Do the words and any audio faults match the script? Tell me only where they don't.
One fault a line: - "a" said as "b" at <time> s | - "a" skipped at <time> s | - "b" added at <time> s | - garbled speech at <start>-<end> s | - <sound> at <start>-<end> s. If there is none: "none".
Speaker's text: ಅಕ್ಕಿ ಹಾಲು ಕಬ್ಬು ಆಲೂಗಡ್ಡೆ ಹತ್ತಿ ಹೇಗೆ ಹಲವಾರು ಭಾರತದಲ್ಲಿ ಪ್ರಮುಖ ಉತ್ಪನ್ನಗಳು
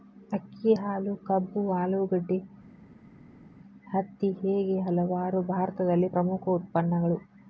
none